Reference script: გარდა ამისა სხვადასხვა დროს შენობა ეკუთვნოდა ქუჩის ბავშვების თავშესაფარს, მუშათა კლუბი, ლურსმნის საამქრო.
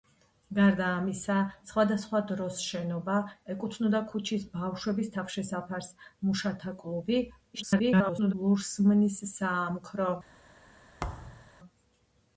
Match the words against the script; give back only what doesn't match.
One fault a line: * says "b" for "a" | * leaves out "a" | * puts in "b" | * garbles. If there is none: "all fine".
* garbles